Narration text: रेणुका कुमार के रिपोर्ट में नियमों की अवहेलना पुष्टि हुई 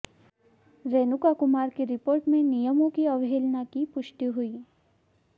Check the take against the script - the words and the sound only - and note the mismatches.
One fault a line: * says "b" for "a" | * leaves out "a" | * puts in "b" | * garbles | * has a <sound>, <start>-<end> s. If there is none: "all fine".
* says "की" for "के"
* puts in "की"